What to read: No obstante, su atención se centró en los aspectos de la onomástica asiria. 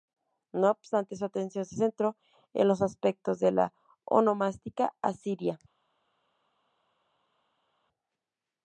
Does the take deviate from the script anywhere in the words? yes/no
no